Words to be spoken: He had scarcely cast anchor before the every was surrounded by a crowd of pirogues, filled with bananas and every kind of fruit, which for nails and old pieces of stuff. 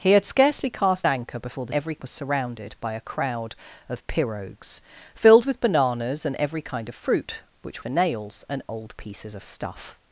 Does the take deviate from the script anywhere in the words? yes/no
no